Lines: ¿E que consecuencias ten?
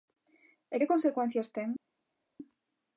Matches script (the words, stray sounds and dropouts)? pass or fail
pass